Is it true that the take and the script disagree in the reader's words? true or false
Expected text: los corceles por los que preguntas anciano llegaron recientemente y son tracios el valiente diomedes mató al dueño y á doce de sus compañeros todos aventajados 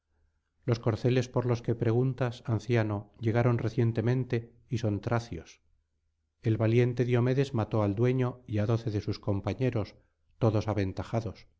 false